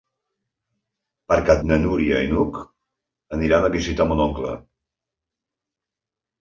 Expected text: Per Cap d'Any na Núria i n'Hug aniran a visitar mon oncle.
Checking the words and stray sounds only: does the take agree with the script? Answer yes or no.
no